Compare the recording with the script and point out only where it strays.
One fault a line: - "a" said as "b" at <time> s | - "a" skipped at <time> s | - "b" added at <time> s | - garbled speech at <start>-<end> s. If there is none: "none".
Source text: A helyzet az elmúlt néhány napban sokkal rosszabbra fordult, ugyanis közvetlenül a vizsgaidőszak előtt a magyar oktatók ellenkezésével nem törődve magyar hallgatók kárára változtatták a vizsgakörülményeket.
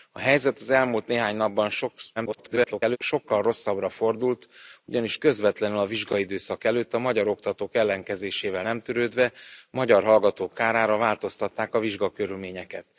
- garbled speech at 2.2-3.0 s